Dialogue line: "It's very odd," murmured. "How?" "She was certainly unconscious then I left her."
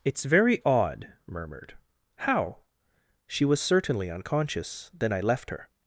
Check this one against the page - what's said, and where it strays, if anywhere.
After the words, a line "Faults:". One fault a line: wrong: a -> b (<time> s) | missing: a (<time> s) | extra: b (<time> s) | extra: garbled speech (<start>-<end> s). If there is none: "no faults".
"It's very odd," murmured. "How?" "She was certainly unconscious then I left her."
Faults:
no faults